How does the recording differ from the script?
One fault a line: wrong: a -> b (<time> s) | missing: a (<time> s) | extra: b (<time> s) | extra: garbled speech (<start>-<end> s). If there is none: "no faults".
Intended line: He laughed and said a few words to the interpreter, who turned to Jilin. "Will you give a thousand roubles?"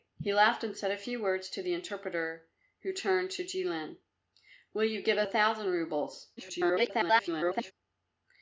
extra: garbled speech (6.4-7.7 s)